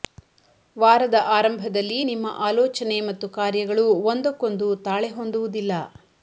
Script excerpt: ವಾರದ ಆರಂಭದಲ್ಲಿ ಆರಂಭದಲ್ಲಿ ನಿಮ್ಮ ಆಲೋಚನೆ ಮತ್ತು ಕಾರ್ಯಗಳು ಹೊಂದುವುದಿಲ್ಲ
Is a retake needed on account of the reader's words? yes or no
yes